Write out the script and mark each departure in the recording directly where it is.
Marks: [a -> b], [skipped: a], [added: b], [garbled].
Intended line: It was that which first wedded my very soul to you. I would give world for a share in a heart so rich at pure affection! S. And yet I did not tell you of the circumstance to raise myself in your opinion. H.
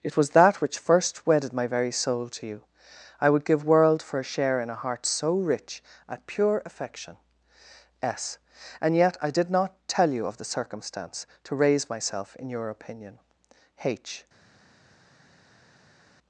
It was that which first wedded my very soul to you. I would give world for a share in a heart so rich at pure affection! S. And yet I did not tell you of the circumstance to raise myself in your opinion. H.